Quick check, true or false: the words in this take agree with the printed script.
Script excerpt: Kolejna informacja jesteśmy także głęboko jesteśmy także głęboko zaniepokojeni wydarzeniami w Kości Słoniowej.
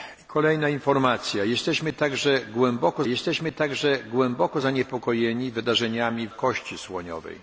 true